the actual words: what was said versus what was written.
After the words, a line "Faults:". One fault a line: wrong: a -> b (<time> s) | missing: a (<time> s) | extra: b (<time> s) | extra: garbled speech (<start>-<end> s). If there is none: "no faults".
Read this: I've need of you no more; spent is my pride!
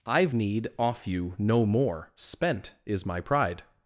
I've need off you no more; spent is my pride!
Faults:
wrong: of -> off (0.8 s)